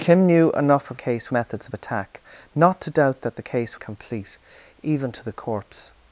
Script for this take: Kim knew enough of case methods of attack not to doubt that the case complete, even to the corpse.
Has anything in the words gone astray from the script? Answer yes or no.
no